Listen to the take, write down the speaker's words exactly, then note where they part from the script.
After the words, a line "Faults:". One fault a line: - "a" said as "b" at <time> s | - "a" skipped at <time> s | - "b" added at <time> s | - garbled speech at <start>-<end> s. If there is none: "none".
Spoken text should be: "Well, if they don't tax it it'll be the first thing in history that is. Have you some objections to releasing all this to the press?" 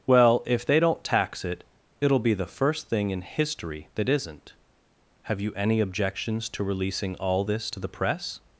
"Well, if they don't tax it it'll be the first thing in history that isn't. Have you any objections to releasing all this to the press?"
Faults:
- "is" said as "isn't" at 4.1 s
- "some" said as "any" at 5.5 s